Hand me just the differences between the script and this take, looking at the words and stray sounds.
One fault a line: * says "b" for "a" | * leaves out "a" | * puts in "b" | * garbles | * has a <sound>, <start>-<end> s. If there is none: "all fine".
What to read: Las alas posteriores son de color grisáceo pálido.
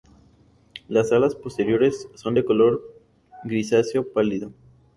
all fine